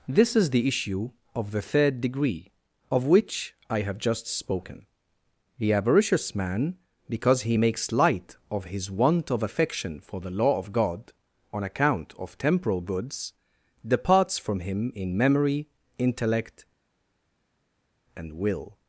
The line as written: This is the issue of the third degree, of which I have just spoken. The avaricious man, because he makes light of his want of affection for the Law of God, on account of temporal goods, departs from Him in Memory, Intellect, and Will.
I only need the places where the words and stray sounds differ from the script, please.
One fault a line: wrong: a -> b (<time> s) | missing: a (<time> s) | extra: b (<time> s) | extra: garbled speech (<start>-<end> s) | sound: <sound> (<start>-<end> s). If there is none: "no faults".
no faults